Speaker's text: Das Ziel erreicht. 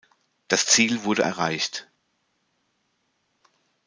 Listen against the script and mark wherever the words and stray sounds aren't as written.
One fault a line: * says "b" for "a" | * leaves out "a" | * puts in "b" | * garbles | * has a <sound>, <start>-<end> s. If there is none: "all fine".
* puts in "wurde"